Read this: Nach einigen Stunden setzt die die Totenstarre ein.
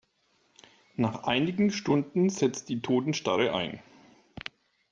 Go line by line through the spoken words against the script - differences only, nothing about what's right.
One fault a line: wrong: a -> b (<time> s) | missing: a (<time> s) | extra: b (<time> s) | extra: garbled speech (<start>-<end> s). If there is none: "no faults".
missing: die (2.8 s)